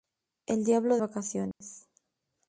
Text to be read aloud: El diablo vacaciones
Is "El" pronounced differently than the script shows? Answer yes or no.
no